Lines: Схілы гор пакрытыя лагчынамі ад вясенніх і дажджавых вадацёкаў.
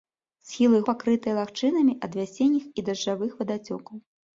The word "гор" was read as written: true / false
false